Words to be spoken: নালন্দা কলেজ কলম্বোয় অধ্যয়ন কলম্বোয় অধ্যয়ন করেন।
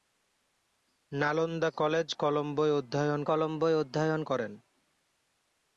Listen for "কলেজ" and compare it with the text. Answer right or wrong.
right